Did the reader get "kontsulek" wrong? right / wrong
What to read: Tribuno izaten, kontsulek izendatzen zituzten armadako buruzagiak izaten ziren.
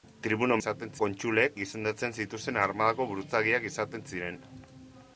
right